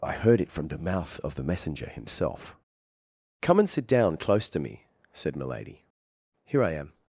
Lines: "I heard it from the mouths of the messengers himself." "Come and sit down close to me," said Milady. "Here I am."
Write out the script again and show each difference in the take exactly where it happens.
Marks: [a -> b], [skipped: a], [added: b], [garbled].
"I heard it from the [mouths -> mouth] of the [messengers -> messenger] himself." "Come and sit down close to me," said Milady. "Here I am."